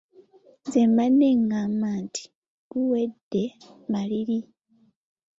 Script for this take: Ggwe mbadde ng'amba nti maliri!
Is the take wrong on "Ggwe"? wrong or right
wrong